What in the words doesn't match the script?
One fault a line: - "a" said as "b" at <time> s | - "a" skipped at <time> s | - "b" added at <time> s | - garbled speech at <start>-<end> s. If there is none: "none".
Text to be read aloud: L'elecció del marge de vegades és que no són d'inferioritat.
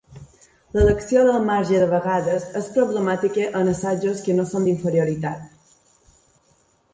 - "problemàtica en assajos" added at 2.7 s